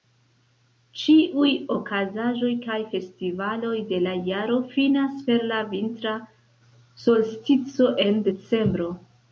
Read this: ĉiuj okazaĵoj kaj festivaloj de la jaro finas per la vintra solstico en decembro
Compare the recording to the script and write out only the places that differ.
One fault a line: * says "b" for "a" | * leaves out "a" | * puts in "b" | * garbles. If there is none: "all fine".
all fine